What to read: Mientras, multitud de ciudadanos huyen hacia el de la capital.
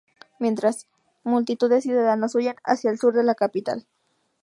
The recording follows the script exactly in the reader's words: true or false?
false